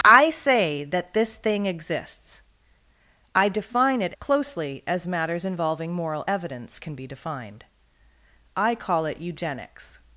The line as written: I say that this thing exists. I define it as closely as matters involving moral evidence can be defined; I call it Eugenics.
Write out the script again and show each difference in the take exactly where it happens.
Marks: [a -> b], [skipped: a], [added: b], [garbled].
I say that this thing exists. I define it [skipped: as] closely as matters involving moral evidence can be defined; I call it Eugenics.